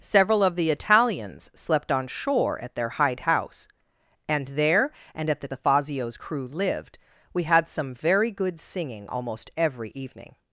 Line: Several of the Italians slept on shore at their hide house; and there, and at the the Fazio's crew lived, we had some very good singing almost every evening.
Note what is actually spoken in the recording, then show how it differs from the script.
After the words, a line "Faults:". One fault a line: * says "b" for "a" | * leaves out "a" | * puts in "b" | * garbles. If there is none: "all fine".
Several of the Italians slept on shore at their hide house; and there, and at the the Fazio's crew lived, we had some very good singing almost every evening.
Faults:
all fine